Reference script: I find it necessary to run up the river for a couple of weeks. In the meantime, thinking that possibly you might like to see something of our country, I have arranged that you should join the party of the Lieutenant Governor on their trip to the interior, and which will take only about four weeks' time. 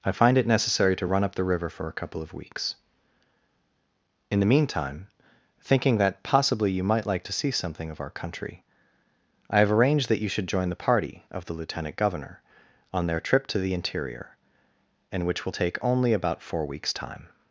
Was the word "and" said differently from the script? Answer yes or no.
no